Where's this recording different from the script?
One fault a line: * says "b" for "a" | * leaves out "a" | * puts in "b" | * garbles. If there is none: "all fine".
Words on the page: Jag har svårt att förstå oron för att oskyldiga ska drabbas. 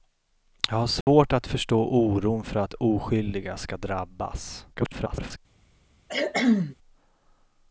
* garbles